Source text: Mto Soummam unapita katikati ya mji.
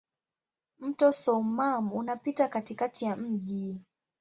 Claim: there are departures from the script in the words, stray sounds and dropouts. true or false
false